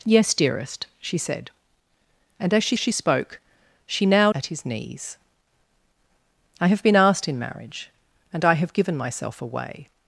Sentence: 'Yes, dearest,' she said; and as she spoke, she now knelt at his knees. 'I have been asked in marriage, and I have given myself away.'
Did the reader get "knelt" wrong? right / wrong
wrong